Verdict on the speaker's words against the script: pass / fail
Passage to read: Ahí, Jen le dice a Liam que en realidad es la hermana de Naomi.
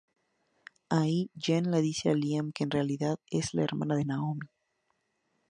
pass